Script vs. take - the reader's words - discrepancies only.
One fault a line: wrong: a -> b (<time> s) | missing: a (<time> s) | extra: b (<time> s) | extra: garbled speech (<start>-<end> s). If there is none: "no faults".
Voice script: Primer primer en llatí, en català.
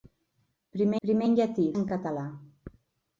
no faults